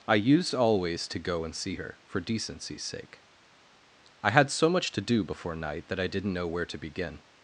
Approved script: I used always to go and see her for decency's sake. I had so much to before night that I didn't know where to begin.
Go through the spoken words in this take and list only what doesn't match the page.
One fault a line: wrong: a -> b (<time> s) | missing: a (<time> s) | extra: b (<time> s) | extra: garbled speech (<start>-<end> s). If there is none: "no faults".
extra: do (5.0 s)